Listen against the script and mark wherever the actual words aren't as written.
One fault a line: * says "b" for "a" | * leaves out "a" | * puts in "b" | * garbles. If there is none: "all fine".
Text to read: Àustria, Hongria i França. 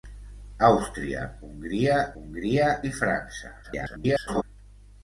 * puts in "Hongria"
* garbles